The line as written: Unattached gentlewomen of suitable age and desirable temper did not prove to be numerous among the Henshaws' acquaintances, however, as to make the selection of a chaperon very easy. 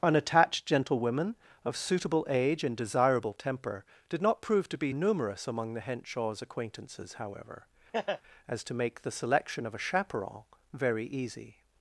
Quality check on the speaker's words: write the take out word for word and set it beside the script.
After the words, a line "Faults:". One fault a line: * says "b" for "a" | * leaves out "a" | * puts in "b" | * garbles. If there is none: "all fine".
Unattached gentlewomen of suitable age and desirable temper did not prove to be numerous among the Henshaws' acquaintances, however, as to make the selection of a chaperon very easy.
Faults:
all fine